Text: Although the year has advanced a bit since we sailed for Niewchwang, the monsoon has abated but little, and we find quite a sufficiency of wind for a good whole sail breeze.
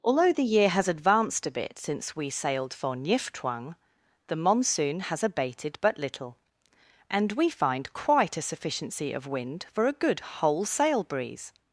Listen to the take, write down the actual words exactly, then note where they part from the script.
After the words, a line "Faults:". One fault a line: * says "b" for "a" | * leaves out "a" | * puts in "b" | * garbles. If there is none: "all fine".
Although the year has advanced a bit since we sailed for Niewchwang, the monsoon has abated but little, and we find quite a sufficiency of wind for a good whole sail breeze.
Faults:
all fine